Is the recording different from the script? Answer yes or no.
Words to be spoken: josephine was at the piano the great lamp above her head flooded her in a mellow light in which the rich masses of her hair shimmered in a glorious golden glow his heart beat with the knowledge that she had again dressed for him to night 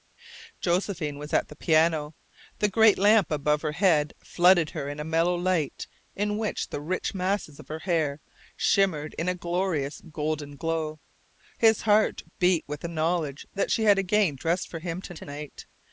yes